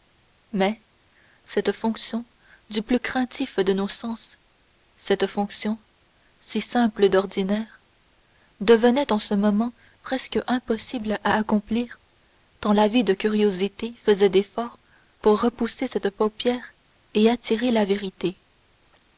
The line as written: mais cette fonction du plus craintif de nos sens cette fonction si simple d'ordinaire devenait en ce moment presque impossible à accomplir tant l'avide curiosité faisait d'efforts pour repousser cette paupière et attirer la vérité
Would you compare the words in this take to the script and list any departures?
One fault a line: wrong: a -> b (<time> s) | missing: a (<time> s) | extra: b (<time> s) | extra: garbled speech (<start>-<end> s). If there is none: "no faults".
no faults